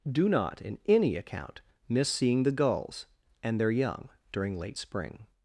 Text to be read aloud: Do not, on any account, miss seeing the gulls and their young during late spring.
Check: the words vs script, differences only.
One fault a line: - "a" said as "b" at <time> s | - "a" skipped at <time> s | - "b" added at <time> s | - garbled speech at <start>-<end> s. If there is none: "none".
- "on" said as "in" at 0.6 s